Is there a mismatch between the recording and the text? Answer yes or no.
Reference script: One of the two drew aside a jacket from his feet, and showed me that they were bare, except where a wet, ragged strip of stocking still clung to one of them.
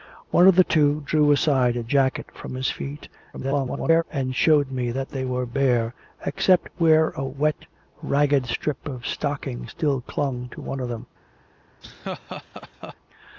yes